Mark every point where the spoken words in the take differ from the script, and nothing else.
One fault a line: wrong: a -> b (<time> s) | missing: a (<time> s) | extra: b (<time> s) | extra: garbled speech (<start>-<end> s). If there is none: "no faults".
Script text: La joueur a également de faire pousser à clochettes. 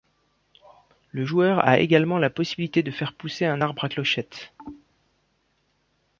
wrong: La -> Le (1.1 s)
extra: la possibilité (2.2 s)
extra: un arbre (3.4 s)